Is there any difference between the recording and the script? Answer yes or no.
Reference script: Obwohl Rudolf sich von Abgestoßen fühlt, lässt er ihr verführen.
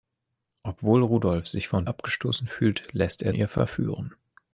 no